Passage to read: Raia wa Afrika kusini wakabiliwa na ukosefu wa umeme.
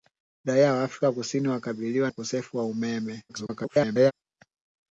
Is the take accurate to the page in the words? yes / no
no